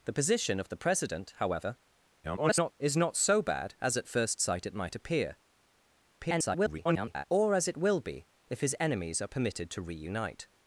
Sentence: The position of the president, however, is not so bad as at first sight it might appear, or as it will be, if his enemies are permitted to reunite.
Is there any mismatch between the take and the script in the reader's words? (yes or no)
yes